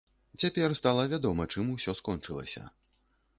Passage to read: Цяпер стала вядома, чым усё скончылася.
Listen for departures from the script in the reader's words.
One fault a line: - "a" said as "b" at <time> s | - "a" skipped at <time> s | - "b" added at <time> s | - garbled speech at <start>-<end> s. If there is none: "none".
none